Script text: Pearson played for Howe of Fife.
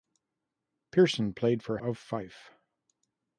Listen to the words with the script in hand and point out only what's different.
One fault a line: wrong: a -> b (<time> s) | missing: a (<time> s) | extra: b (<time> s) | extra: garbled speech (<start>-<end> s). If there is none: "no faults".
missing: Howe (1.8 s)